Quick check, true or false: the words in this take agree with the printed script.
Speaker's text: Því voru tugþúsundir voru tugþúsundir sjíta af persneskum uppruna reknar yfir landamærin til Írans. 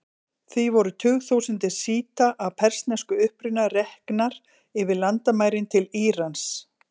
false